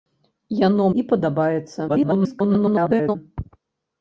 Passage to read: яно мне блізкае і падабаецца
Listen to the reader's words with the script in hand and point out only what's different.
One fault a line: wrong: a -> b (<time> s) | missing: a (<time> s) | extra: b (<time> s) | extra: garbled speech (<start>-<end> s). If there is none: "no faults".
missing: мне блізкае (0.9 s)
extra: garbled speech (1.9-3.2 s)